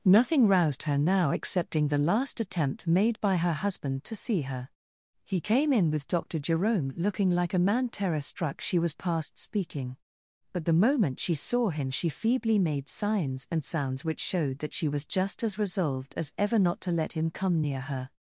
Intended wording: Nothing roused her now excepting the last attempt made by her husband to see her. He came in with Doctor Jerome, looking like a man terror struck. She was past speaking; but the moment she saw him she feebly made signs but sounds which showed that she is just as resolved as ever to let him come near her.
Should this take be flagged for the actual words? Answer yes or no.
yes